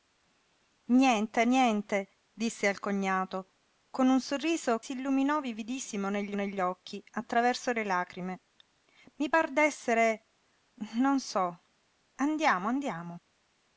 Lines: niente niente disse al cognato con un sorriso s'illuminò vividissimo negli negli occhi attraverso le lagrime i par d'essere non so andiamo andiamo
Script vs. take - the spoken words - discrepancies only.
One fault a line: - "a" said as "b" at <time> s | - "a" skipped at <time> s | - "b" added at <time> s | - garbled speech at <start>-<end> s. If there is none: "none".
none